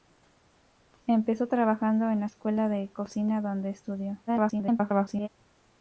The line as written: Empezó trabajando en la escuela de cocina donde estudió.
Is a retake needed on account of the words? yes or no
yes